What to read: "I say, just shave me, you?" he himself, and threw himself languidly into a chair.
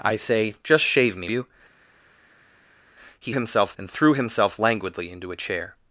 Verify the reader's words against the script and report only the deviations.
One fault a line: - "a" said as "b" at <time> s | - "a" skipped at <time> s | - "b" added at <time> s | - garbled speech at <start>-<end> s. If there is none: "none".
none